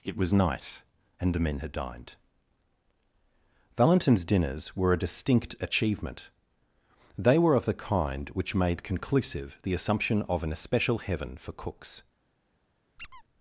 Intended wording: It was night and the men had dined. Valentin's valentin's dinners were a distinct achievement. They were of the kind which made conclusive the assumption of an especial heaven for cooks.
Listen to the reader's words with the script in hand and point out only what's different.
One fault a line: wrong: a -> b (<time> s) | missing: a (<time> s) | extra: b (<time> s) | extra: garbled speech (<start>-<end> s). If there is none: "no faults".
missing: valentin's (4.2 s)